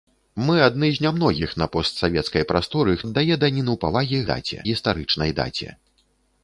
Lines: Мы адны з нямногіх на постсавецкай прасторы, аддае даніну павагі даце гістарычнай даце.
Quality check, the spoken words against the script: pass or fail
pass